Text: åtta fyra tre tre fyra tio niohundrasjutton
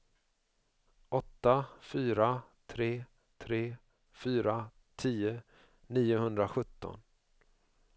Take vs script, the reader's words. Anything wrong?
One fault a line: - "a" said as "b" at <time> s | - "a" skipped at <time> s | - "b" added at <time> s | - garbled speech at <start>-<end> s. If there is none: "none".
none